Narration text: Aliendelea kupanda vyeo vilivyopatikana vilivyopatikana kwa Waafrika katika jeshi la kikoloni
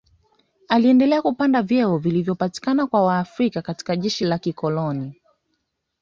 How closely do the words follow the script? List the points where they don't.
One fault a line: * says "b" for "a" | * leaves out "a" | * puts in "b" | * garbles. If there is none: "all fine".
* leaves out "vilivyopatikana"